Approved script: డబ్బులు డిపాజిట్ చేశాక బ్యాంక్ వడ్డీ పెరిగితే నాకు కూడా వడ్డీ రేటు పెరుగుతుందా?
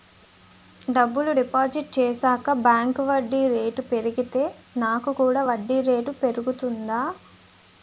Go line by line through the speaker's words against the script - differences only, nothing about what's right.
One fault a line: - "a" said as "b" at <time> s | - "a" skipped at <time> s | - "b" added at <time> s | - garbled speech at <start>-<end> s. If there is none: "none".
- "రేటు" added at 3.6 s